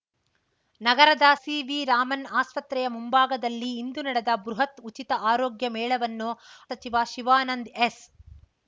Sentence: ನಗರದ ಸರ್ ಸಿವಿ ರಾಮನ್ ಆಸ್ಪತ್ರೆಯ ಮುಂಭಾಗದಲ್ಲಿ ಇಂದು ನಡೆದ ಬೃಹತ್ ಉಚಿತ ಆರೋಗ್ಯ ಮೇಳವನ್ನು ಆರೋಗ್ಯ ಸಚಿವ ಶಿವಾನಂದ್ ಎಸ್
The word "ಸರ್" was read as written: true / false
false